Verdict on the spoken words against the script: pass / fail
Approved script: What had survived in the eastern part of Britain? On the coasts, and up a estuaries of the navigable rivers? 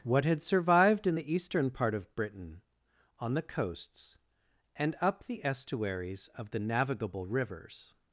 fail